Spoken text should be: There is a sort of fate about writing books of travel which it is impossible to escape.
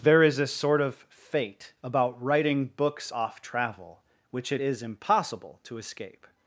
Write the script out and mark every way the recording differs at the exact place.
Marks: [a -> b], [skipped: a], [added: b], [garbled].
There is a sort of fate about writing books [of -> off] travel which it is impossible to escape.